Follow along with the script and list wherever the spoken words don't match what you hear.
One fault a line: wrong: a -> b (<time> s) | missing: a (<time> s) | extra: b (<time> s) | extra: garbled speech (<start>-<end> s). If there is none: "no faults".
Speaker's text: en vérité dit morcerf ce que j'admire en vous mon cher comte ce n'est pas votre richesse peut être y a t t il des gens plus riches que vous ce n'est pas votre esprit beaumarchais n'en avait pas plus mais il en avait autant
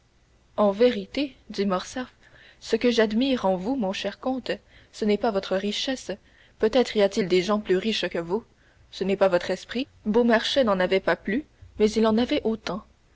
missing: t (7.2 s)